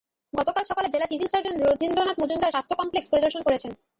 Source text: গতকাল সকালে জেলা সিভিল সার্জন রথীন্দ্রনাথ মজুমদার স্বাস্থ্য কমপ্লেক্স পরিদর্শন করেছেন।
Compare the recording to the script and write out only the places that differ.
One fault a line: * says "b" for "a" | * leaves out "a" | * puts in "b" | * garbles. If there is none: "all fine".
all fine